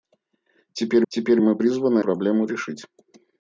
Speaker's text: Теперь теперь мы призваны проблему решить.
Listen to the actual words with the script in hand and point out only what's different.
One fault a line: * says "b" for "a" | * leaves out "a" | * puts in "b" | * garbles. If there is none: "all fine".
all fine